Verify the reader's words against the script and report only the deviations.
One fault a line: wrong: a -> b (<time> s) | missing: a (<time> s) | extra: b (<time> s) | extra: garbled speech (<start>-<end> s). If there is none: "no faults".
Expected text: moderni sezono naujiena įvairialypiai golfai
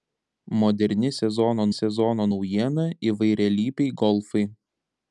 extra: sezono (1.8 s)